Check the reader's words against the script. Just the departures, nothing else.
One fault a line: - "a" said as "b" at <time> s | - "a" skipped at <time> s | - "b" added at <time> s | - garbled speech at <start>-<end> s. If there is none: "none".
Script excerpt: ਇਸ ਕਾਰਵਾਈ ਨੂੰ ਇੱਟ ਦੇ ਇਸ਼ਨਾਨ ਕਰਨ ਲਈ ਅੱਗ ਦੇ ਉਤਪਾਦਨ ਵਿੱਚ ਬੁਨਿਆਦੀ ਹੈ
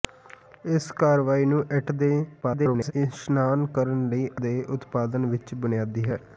- garbled speech at 2.4-2.9 s
- "ਅੱਗ" skipped at 4.3 s